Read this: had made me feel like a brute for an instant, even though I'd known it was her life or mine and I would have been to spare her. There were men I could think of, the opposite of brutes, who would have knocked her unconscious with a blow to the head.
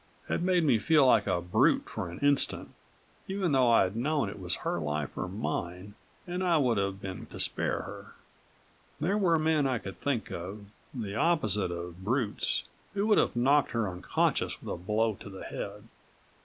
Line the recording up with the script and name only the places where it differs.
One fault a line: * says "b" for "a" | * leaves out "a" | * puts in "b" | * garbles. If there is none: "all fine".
all fine